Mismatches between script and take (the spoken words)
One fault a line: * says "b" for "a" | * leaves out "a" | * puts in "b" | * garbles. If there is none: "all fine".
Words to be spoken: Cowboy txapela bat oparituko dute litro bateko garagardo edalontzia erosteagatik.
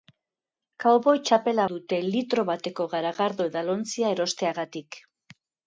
* leaves out "bat oparituko"